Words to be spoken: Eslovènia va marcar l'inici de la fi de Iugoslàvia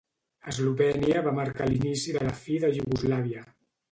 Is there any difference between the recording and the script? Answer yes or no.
no